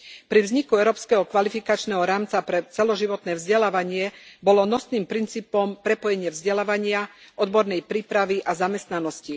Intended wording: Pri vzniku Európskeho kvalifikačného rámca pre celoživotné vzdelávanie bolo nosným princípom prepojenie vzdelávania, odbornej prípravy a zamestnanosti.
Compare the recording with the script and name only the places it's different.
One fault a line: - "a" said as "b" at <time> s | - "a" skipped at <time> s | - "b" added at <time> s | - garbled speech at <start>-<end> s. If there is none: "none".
none